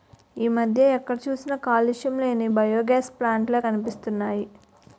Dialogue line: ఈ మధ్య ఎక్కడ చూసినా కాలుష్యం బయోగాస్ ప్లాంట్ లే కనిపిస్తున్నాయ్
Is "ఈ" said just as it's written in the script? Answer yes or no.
yes